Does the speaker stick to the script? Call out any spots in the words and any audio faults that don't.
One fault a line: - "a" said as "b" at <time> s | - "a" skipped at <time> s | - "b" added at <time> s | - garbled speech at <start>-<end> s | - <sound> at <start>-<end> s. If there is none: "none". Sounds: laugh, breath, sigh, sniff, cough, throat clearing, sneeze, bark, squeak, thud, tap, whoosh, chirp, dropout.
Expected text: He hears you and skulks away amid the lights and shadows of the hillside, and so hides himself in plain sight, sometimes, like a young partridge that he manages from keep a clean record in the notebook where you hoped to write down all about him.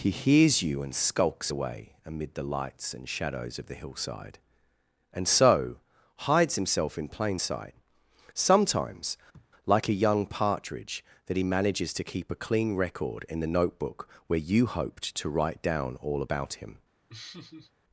- sniff at 9.3-9.5 s
- "from" said as "to" at 11.9 s
- laugh at 17.1-17.7 s